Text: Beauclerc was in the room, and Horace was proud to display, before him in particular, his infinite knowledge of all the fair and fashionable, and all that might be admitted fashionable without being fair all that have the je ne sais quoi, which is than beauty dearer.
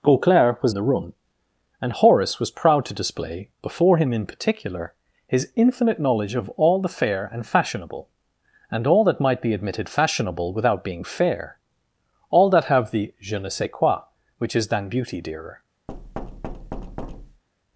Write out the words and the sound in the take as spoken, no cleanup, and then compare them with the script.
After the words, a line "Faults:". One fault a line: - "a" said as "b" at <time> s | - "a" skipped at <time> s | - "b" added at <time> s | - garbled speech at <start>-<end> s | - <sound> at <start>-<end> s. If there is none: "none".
Beauclerc was in the room, and Horace was proud to display, before him in particular, his infinite knowledge of all the fair and fashionable, and all that might be admitted fashionable without being fair all that have the je ne sais quoi, which is than beauty dearer.
Faults:
- thud at 15.9-17.4 s